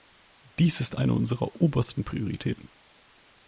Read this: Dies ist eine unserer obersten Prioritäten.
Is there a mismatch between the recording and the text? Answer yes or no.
no